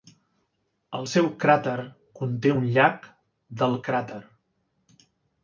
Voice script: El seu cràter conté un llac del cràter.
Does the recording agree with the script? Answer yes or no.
yes